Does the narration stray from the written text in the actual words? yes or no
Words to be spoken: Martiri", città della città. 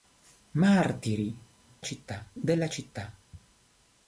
no